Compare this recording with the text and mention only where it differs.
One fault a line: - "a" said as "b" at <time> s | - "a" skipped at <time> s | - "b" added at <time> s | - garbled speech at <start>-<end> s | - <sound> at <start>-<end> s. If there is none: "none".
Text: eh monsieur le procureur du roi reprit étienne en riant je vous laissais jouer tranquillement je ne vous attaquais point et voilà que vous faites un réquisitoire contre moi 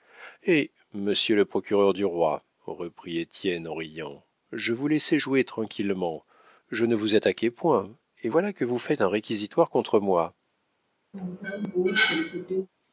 - cough at 11.1-12.7 s